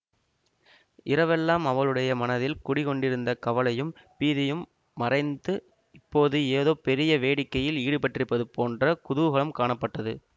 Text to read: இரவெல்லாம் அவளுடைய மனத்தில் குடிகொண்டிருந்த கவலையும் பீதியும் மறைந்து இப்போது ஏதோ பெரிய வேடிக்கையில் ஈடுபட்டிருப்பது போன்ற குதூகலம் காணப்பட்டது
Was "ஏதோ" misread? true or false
false